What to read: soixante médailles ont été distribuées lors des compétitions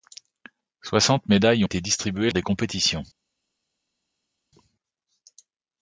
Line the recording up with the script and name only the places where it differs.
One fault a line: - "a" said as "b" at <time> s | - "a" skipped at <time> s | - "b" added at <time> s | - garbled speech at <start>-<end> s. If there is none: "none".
- "ont" skipped at 1.6 s
- "lors" skipped at 2.3 s